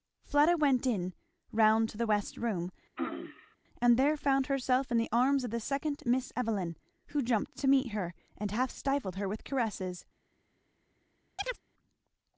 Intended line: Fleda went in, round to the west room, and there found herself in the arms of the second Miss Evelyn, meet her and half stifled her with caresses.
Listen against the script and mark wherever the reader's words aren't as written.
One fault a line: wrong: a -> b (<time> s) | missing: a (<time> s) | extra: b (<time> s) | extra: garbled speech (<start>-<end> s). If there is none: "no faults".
extra: who jumped to (7.1 s)